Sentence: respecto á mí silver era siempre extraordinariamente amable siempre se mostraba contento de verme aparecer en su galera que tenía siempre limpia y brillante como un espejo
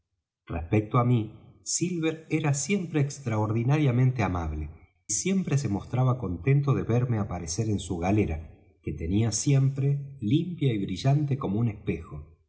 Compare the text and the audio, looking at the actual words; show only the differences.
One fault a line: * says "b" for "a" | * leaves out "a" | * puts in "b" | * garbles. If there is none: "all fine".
all fine